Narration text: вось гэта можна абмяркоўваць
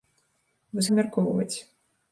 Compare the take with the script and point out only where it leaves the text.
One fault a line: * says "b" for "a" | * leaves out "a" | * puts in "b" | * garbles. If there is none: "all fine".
* leaves out "гэта можна"